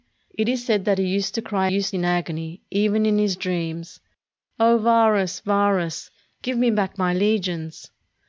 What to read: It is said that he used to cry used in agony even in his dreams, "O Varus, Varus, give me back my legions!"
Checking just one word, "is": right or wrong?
right